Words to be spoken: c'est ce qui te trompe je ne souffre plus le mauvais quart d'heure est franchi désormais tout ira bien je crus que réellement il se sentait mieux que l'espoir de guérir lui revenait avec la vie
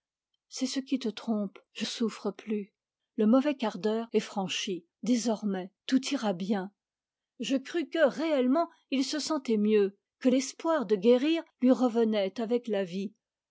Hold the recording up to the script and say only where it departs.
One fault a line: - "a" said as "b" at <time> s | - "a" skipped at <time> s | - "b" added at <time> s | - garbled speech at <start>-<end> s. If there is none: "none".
- "ne" skipped at 1.9 s